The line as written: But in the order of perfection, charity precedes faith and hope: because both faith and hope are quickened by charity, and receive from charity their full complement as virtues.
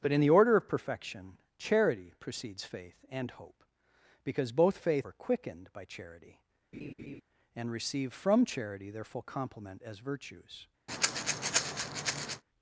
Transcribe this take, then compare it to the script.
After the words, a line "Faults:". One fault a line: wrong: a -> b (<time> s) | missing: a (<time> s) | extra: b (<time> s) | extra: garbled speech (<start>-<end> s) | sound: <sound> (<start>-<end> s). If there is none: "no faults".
But in the order of perfection, charity precedes faith and hope: because both faith are quickened by charity, and receive from charity their full complement as virtues.
Faults:
missing: and hope (5.1 s)
sound: laugh (6.7-7.2 s)
sound: breath (10.9-12.4 s)